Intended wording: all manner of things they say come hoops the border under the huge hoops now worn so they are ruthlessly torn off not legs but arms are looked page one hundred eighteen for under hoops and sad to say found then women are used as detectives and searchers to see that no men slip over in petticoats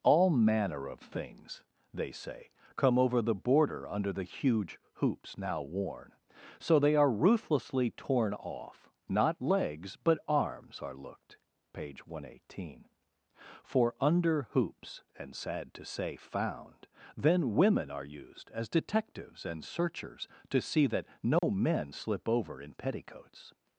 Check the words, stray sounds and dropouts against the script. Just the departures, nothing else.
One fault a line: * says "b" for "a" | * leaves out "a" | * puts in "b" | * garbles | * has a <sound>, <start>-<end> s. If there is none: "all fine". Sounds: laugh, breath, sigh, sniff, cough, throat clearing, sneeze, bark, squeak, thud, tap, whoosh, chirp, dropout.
* says "over" for "hoops"
* has a dropout, 21.4-21.4 s